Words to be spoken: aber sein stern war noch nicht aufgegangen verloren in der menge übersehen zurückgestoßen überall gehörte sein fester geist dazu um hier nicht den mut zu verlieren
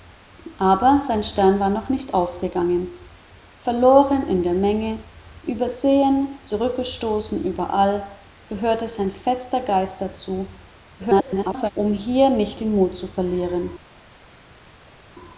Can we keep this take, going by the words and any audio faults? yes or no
no